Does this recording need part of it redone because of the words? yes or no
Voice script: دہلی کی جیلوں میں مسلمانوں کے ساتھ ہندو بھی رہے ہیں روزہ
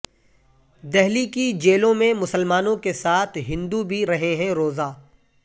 no